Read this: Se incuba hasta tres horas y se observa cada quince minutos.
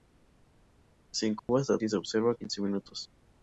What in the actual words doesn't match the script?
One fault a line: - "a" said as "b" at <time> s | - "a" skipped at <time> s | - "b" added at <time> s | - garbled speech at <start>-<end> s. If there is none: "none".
- "tres horas" skipped at 1.8 s
- "cada" skipped at 2.3 s